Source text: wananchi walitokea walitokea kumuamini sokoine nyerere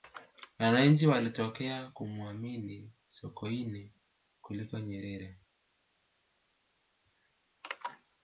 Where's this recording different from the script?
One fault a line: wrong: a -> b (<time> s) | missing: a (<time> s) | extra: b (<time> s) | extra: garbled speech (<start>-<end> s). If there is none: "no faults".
missing: walitokea (1.9 s)
extra: kuliko (4.4 s)